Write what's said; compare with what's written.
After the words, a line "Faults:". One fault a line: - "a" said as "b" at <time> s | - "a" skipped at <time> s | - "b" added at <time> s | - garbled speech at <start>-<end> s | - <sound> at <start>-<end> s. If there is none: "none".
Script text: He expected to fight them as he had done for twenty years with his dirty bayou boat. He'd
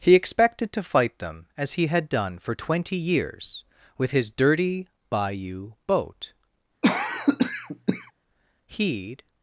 He expected to fight them as he had done for twenty years with his dirty bayou boat. He'd
Faults:
- cough at 6.8-8.1 s